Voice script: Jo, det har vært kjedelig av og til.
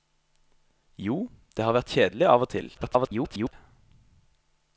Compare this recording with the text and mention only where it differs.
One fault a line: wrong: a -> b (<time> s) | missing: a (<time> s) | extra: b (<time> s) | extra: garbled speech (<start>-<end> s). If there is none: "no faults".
extra: garbled speech (2.7-3.5 s)